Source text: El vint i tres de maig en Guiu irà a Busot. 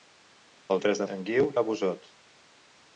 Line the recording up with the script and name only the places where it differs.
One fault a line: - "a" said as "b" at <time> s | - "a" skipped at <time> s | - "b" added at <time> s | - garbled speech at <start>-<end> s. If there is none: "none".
- "vint" skipped at 0.8 s
- "maig" skipped at 1.1 s
- "irà" skipped at 1.5 s